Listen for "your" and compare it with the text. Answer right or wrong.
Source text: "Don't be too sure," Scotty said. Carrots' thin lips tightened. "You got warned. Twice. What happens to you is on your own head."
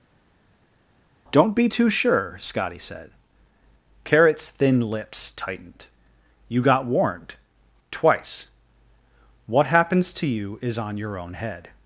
right